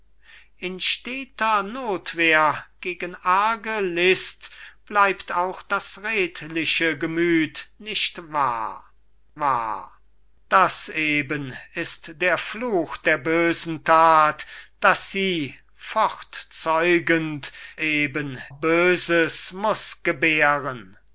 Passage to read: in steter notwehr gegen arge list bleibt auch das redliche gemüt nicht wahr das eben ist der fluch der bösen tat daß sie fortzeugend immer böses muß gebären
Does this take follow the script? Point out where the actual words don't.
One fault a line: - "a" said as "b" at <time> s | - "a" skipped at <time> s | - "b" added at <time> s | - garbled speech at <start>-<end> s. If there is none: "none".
- "wahr" added at 9.4 s
- "immer" said as "eben" at 17.8 s